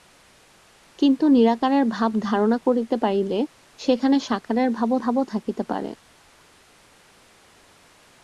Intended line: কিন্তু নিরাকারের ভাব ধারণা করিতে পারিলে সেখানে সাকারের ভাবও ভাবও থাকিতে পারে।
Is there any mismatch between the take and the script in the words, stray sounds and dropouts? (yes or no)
no